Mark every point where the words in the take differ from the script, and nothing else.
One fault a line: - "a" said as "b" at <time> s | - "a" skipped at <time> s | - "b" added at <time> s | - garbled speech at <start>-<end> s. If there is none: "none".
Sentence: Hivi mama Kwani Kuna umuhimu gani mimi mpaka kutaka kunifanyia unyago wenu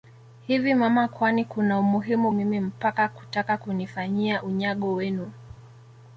- "gani" skipped at 2.3 s